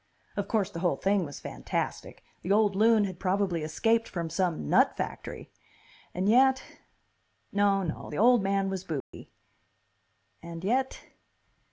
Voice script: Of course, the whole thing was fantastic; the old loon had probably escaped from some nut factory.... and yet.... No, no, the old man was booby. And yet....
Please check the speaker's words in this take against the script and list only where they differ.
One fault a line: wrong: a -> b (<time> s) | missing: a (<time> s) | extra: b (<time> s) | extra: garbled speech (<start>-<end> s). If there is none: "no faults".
no faults